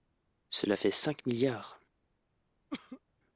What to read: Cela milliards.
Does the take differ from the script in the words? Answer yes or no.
yes